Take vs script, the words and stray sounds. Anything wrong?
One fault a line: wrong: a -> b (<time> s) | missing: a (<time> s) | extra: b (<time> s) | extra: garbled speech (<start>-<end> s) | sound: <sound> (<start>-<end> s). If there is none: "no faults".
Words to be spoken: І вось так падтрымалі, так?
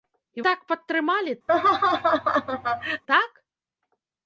missing: вось (0.5 s)
sound: laugh (1.5-3.0 s)